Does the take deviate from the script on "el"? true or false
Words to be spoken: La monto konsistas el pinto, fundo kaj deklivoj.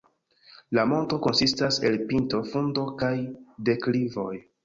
false